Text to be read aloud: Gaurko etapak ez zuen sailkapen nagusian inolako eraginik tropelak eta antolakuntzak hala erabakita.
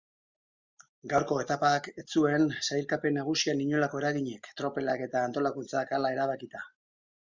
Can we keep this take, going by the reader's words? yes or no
yes